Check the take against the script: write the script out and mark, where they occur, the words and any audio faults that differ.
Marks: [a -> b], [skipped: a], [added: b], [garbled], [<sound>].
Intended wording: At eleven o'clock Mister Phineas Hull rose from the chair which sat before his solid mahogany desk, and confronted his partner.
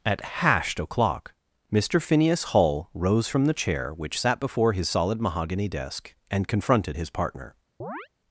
At [eleven -> hashed] o'clock Mister Phineas Hull rose from the chair which sat before his solid mahogany desk, and confronted his partner. [chirp]